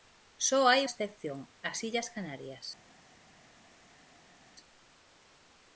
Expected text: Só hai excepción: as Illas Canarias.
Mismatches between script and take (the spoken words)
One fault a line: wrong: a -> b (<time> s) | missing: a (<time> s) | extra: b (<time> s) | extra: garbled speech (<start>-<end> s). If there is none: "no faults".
no faults